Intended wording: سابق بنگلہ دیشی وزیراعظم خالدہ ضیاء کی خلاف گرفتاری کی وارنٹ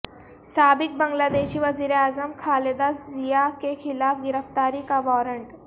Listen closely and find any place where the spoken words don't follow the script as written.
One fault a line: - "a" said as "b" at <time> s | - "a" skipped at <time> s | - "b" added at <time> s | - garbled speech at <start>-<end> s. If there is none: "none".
- "کی" said as "کے" at 3.6 s
- "کی" said as "کا" at 4.9 s